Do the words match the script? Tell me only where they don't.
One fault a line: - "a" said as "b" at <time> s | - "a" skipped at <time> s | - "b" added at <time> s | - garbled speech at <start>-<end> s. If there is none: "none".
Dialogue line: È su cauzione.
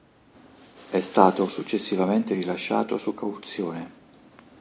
- "stato successivamente rilasciato" added at 1.0 s